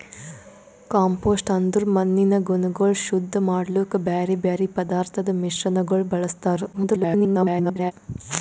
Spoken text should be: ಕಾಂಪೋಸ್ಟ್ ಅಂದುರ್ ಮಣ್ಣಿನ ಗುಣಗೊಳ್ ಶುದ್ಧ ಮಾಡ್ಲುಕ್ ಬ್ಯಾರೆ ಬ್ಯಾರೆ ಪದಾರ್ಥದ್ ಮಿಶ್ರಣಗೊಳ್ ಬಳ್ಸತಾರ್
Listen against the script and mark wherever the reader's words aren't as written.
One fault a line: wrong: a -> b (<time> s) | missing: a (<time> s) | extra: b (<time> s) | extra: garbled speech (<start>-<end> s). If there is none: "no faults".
extra: garbled speech (6.7-7.9 s)